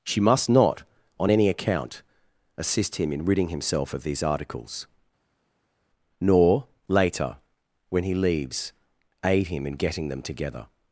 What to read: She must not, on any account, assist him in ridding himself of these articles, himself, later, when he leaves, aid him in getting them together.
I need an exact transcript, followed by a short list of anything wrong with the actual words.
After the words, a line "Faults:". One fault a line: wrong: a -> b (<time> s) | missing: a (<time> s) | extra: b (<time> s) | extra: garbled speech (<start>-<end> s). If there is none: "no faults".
She must not, on any account, assist him in ridding himself of these articles, nor, later, when he leaves, aid him in getting them together.
Faults:
wrong: himself -> nor (6.2 s)